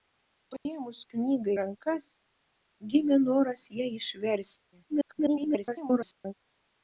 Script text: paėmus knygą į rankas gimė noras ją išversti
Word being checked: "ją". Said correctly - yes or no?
yes